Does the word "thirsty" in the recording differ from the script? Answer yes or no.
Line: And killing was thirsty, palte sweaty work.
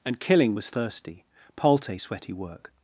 no